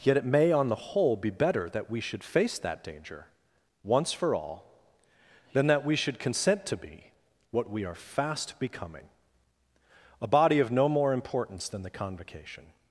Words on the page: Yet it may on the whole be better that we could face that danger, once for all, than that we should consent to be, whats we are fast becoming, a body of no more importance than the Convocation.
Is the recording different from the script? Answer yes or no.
yes